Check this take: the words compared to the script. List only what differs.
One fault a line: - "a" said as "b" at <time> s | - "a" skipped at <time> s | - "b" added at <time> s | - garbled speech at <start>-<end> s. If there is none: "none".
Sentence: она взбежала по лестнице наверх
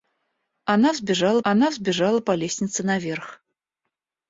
- "она взбежала" added at 1.4 s